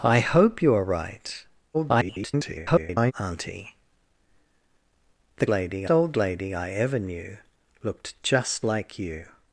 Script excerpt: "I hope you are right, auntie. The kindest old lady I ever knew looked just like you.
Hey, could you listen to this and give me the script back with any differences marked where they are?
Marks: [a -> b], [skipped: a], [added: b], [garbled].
"I hope you are right, [garbled] auntie. The [kindest -> lady] old lady I ever knew looked just like you.